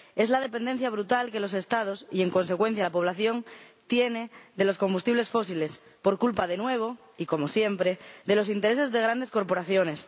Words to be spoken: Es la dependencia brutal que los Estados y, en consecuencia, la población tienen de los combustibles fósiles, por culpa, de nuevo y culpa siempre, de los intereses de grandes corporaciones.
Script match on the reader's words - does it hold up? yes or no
no